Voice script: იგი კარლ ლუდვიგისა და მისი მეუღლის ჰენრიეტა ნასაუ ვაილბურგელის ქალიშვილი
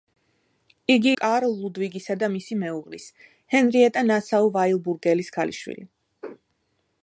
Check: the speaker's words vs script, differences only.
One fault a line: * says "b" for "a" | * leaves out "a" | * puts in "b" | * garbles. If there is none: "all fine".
all fine